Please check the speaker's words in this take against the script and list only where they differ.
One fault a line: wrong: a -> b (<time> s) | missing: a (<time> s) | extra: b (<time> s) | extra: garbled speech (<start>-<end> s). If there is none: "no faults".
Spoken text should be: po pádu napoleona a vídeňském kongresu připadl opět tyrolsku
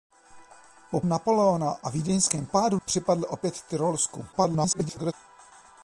missing: pádu (1.0 s)
wrong: kongresu -> pádu (2.5 s)
extra: garbled speech (4.3-5.1 s)